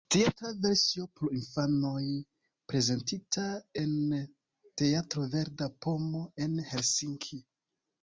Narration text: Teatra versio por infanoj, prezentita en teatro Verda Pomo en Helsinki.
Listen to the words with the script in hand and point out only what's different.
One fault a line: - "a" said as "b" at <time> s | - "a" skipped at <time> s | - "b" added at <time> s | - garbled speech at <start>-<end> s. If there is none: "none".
none